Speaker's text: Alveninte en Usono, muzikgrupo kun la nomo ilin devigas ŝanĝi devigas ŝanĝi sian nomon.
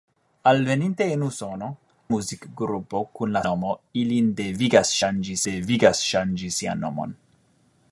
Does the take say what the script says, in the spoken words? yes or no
yes